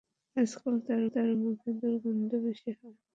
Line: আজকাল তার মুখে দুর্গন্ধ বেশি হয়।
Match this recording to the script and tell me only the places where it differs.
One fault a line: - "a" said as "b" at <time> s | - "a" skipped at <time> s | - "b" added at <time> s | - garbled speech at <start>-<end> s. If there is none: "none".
- "তার" added at 1.1 s